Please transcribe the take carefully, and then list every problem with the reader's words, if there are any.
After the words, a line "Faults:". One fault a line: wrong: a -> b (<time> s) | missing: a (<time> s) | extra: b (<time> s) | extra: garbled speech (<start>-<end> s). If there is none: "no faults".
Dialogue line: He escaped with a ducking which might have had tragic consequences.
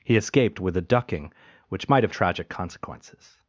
He escaped with a ducking which might have tragic consequences.
Faults:
missing: had (2.1 s)